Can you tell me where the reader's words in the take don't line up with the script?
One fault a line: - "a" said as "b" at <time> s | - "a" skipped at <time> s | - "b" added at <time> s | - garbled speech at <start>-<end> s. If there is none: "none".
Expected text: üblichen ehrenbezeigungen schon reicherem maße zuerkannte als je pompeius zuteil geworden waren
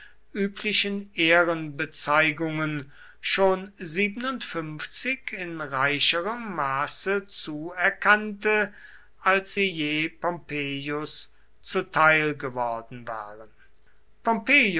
- "in" added at 5.3 s
- "sie" added at 9.5 s